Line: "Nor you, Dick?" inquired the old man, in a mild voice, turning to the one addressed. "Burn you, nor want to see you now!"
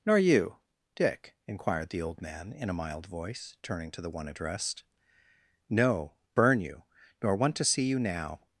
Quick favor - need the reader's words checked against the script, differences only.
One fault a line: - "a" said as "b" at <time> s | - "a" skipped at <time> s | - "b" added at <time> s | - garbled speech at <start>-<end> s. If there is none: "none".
- "No" added at 5.7 s